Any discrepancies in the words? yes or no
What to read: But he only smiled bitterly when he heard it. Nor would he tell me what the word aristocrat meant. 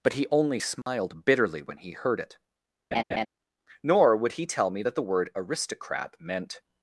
yes